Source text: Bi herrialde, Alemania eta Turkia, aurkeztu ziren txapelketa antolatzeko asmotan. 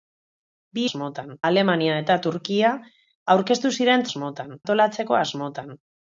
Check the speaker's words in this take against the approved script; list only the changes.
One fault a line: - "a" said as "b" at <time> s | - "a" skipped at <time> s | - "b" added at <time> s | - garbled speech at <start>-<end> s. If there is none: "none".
- "herrialde" said as "asmotan" at 0.8 s
- "txapelketa" said as "asmotan" at 4.1 s